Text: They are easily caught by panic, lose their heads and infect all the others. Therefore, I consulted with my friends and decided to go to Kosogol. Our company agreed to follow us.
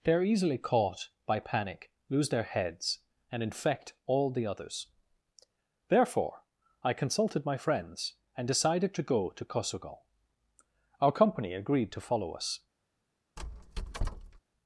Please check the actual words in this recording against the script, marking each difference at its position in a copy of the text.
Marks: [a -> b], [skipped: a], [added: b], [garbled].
They are easily caught by panic, lose their heads and infect all the others. Therefore, I consulted [skipped: with] my friends and decided to go to Kosogol. Our company agreed to follow us.